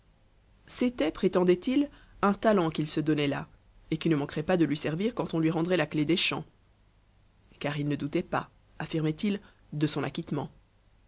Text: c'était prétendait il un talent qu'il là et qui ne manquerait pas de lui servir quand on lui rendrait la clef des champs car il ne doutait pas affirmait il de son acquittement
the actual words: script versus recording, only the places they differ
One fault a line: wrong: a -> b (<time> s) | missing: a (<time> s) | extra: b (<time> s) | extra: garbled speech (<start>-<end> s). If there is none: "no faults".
extra: se donnait (2.9 s)